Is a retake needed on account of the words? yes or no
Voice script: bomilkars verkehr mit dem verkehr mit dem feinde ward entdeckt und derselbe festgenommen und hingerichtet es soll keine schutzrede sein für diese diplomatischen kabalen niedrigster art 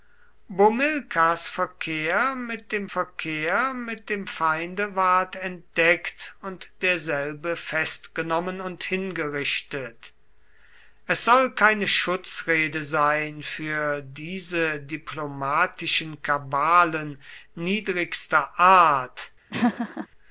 no